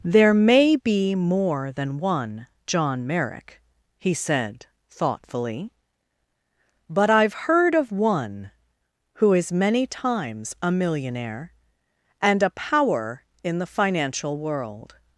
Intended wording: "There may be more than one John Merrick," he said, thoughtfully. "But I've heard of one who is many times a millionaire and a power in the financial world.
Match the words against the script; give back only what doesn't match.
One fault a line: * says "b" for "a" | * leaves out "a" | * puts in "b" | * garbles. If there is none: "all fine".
all fine